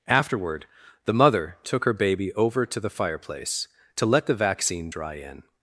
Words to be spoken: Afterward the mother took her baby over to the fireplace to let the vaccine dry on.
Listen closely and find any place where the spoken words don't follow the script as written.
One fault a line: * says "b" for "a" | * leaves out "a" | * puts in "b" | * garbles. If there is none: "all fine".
* says "in" for "on"